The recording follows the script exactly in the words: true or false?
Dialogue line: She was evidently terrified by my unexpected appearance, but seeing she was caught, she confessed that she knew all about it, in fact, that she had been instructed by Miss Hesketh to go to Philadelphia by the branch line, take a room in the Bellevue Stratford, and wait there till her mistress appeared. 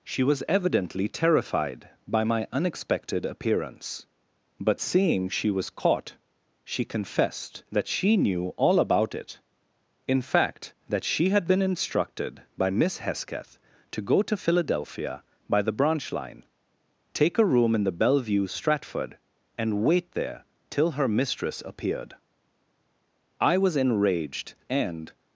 false